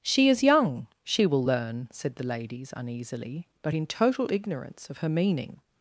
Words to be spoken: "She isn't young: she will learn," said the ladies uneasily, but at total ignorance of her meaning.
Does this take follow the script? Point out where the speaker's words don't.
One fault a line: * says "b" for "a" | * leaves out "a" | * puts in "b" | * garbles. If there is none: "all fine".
* says "is" for "isn't"
* says "in" for "at"